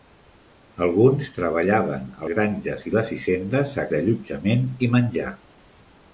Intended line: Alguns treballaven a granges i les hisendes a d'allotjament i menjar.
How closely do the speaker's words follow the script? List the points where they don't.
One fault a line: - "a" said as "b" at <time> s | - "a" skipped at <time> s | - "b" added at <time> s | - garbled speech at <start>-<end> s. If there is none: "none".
none